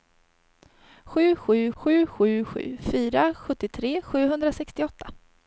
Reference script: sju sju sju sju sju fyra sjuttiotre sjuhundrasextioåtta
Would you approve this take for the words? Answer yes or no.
yes